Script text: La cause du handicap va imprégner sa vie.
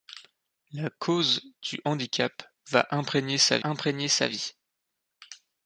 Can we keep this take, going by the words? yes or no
no